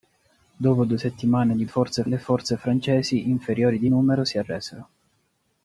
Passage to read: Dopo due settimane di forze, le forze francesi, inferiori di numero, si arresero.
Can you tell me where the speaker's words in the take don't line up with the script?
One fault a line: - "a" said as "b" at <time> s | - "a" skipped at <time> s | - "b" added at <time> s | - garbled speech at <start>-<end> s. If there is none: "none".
none